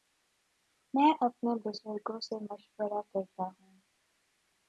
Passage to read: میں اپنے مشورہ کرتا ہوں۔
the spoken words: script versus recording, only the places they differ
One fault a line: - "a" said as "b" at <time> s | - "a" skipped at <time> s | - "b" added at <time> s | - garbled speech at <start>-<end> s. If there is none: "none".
- "بزرگوں سے" added at 1.6 s